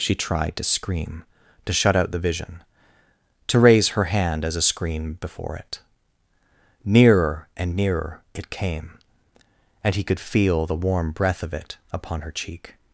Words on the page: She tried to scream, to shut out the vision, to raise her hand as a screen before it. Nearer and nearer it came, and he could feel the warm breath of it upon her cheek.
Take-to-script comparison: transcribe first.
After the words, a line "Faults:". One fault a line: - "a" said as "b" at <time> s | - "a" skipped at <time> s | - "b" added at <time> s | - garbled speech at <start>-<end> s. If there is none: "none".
She tried to scream, to shut out the vision, to raise her hand as a screen before it. Nearer and nearer it came, and he could feel the warm breath of it upon her cheek.
Faults:
none